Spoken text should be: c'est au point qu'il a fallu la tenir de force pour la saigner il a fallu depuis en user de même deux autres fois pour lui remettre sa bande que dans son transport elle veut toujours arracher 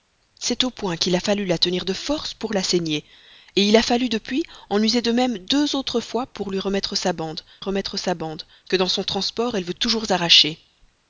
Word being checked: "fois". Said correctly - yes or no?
yes